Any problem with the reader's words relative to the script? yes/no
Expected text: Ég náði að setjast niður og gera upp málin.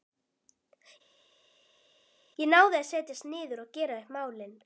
no